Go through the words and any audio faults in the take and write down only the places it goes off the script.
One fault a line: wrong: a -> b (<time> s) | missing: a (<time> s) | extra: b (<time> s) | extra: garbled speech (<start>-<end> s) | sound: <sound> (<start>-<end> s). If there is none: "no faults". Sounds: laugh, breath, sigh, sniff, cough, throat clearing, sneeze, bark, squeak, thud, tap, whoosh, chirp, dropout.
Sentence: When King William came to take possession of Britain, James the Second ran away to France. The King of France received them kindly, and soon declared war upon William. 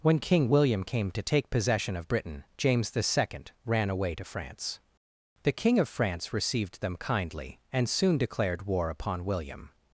no faults